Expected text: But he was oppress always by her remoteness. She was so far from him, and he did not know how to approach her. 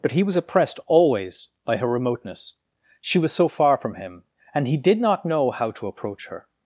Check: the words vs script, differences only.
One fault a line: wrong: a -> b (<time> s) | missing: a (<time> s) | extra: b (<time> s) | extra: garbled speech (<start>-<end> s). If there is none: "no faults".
wrong: oppress -> oppressed (0.3 s)